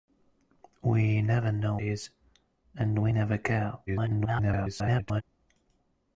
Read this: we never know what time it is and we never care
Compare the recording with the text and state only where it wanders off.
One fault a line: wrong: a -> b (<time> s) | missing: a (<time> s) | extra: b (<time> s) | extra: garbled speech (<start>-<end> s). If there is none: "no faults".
missing: what time it (1.8 s)
extra: garbled speech (3.9-5.2 s)